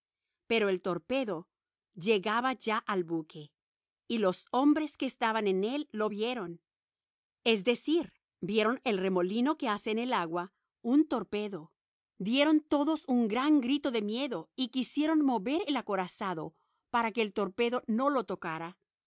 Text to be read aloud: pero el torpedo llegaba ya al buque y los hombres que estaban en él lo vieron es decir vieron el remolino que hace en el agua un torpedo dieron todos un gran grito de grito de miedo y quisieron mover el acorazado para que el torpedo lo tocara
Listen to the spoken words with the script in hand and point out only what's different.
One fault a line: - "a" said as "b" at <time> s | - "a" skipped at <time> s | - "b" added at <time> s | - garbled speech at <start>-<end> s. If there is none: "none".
- "grito de" skipped at 14.0 s
- "no" added at 17.9 s